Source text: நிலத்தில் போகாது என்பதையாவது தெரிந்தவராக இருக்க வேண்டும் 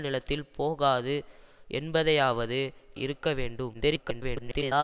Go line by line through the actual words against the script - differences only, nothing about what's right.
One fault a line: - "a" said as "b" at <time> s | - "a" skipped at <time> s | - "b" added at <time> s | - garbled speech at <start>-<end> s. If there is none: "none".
- "தெரிந்தவராக" skipped at 2.6 s
- garbled speech at 3.7-4.8 s